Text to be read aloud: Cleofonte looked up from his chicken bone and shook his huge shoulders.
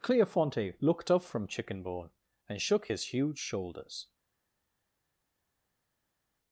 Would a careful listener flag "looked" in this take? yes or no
no